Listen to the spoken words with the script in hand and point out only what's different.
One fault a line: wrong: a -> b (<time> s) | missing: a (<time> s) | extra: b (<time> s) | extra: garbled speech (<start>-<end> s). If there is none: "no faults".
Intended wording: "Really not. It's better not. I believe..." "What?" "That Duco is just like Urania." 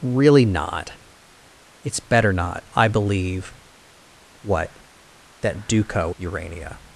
missing: is just like (6.2 s)